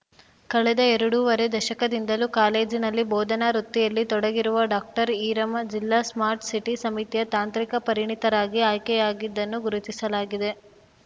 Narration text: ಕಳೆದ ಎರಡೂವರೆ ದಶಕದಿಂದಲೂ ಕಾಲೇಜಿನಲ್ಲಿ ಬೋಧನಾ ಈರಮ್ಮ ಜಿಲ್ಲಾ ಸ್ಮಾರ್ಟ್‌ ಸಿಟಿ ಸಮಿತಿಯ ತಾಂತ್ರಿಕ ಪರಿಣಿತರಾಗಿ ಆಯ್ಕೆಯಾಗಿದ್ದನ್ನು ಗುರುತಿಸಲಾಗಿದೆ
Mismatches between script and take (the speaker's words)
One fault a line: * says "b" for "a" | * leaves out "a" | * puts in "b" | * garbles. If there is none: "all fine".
* puts in "ವೃತ್ತಿಯಲ್ಲಿ ತೊಡಗಿರುವ ಡಾಕ್ಟರ್"